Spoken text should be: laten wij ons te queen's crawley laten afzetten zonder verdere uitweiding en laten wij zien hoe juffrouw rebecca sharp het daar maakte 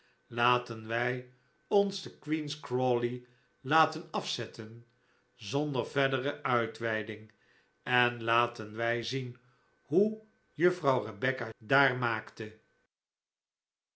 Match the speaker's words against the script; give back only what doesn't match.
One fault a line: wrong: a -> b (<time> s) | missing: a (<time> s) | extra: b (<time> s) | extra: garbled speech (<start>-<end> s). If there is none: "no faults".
missing: sharp het (11.5 s)